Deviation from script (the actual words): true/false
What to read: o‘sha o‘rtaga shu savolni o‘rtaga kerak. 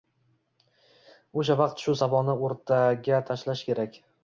true